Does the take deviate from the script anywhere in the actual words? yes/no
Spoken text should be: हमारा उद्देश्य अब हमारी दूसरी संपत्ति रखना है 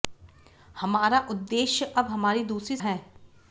yes